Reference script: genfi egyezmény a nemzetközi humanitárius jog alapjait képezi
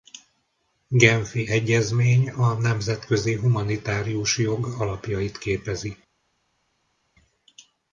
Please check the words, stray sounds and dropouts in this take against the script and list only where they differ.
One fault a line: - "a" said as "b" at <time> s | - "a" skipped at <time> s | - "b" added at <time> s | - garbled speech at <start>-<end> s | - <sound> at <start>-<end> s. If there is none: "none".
none